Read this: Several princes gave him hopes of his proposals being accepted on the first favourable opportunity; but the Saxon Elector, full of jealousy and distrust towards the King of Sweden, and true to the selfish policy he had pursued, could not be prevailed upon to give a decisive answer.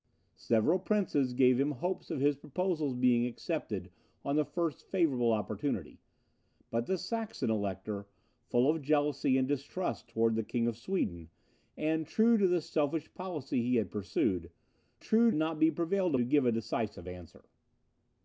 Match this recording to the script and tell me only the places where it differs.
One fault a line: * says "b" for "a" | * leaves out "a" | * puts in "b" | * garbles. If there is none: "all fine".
* says "true" for "could"
* leaves out "upon"